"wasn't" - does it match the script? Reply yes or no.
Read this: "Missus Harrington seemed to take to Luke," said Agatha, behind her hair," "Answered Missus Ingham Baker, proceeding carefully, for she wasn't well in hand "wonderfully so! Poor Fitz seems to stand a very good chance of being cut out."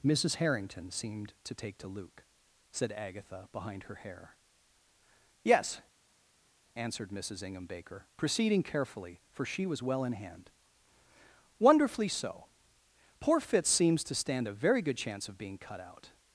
no